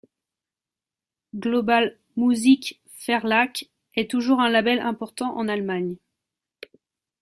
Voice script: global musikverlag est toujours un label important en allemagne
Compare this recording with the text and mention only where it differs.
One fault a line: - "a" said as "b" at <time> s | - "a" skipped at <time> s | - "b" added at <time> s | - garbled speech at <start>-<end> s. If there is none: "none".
none